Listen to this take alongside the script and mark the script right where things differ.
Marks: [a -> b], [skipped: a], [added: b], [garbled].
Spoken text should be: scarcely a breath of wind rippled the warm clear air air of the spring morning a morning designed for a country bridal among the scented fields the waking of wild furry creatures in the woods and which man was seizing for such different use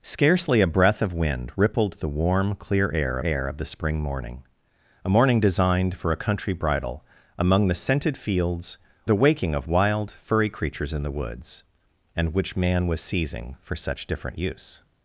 scarcely a breath of wind rippled the warm clear air air of the spring morning a morning designed for a country bridal among the scented fields the waking of wild furry creatures in the woods and which man was seizing for such different use